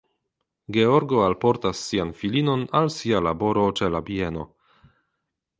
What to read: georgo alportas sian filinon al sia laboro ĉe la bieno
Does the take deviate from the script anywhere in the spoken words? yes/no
no